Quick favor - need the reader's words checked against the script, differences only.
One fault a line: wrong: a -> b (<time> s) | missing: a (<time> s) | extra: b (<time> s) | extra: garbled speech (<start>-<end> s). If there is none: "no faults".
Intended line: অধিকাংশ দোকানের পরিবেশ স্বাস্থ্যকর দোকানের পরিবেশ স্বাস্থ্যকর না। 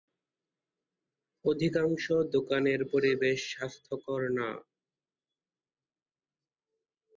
missing: দোকানের পরিবেশ স্বাস্থ্যকর (4.2 s)